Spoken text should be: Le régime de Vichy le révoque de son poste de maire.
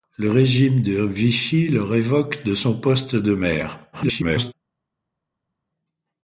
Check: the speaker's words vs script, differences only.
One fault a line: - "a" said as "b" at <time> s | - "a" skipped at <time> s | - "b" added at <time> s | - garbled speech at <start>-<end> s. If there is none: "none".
- garbled speech at 3.9-4.5 s